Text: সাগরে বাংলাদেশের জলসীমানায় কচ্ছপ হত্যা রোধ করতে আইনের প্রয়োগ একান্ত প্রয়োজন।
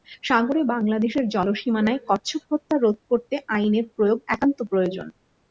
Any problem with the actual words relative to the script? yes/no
no